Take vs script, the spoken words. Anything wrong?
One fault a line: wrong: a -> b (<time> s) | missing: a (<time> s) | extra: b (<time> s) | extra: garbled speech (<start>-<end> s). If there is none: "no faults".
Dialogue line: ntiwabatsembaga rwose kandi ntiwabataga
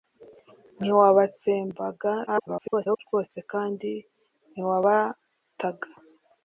extra: garbled speech (2.3-3.0 s)